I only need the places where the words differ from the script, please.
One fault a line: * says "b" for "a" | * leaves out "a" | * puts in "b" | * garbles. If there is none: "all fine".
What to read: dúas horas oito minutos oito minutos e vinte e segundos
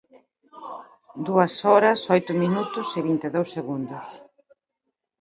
* leaves out "oito minutos"
* puts in "dous"